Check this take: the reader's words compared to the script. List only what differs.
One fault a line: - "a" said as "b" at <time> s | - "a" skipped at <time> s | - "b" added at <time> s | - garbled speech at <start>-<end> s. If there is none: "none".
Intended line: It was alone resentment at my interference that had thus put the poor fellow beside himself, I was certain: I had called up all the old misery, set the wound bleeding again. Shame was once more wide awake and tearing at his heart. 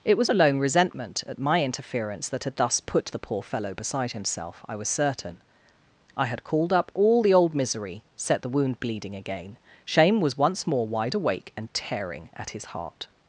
none